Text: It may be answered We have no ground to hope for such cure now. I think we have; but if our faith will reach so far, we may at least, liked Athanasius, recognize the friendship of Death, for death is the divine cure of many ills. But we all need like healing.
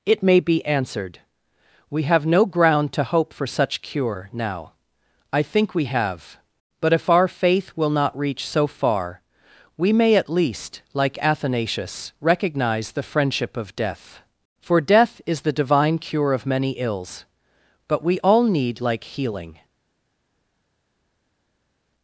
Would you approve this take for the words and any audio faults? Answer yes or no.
no